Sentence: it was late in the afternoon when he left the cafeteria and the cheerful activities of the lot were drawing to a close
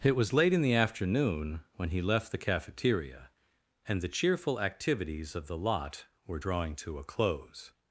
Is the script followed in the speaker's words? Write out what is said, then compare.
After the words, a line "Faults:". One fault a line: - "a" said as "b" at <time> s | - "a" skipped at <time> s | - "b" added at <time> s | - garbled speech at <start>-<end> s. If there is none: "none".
it was late in the afternoon when he left the cafeteria and the cheerful activities of the lot were drawing to a close
Faults:
none